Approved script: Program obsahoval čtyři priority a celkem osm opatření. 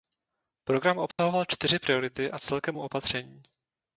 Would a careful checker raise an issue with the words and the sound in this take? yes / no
yes